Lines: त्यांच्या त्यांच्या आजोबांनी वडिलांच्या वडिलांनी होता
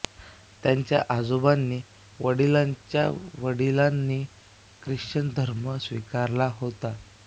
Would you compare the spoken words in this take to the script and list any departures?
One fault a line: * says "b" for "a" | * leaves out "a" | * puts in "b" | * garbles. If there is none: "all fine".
* leaves out "त्यांच्या"
* puts in "ख्रिश्चन धर्म स्वीकारला"